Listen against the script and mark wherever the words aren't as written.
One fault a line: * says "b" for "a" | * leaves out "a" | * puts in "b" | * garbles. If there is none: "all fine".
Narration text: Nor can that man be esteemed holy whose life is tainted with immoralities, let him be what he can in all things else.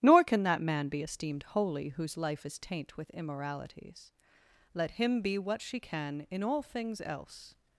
* says "taint" for "tainted"
* says "she" for "he"